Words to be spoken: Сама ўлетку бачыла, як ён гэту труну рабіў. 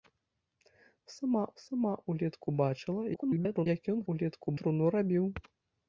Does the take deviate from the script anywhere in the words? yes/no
yes